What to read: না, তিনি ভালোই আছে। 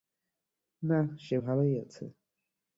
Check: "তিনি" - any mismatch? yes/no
yes